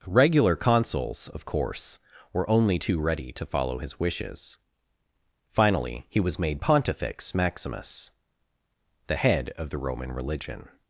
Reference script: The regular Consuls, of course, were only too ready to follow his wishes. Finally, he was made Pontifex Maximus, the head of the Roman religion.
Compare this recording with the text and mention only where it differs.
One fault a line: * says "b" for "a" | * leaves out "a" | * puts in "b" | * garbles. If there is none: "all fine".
* leaves out "The"